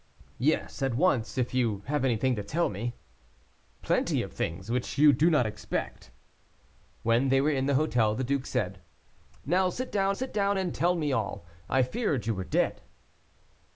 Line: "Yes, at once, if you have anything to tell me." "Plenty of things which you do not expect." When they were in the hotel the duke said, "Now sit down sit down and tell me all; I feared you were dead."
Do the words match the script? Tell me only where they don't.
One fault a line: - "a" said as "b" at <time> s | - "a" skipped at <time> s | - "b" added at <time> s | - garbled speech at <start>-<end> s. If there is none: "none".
none